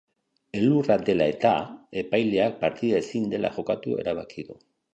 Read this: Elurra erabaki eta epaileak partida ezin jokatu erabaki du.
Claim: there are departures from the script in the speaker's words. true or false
true